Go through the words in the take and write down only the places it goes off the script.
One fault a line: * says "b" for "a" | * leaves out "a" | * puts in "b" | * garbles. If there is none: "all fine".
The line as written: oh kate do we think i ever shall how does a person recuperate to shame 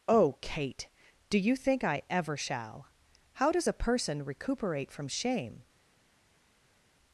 * says "you" for "we"
* says "from" for "to"